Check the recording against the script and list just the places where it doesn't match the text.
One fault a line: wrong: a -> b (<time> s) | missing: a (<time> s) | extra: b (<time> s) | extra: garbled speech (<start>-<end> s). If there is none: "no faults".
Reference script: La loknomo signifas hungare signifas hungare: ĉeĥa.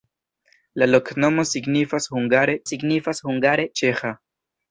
no faults